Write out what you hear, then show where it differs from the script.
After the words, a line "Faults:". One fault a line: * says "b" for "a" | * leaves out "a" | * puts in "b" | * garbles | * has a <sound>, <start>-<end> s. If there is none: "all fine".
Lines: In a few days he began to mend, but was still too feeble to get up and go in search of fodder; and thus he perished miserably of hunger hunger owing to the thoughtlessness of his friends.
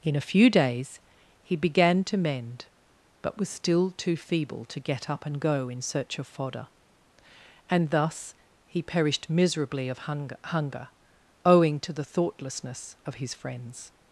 In a few days he began to mend, but was still too feeble to get up and go in search of fodder; and thus he perished miserably of hunger hunger owing to the thoughtlessness of his friends.
Faults:
all fine